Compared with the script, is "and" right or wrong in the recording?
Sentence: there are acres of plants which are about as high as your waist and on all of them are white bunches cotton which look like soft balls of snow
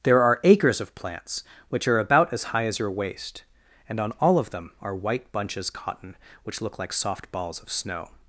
right